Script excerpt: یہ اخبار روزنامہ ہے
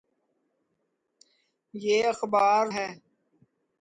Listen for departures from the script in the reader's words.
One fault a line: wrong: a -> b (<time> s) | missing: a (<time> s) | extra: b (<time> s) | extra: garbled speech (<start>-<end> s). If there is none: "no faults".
missing: روزنامہ (2.6 s)